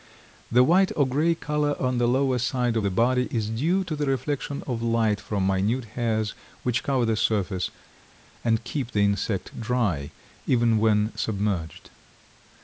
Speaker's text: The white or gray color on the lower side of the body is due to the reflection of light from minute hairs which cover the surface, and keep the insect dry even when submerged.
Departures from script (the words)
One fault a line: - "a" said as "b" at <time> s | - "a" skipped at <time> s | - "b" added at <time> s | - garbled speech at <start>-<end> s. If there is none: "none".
none